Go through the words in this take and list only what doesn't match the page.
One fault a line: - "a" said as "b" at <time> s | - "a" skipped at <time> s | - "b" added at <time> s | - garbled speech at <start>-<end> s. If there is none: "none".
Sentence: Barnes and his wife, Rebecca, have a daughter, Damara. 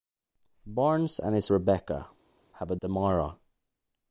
- "wife" skipped at 1.5 s
- "daughter" skipped at 2.8 s